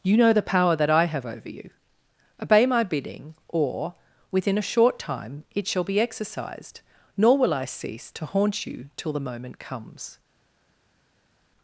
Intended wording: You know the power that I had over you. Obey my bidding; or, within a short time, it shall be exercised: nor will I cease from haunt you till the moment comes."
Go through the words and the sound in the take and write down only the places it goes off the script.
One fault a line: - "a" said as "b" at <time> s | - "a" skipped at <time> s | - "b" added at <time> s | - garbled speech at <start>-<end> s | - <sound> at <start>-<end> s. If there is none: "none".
- "had" said as "have" at 1.1 s
- "from" said as "to" at 8.1 s